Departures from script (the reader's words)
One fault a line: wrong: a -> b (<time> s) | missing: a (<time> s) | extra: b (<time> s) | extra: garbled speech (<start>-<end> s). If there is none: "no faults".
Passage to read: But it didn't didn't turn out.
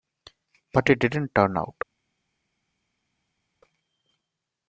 missing: didn't (1.4 s)